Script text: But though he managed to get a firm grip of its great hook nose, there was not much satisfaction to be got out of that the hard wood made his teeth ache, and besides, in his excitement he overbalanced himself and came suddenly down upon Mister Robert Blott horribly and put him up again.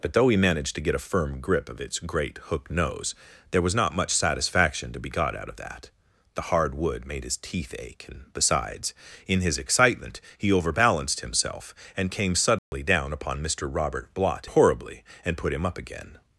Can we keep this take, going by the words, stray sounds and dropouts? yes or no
no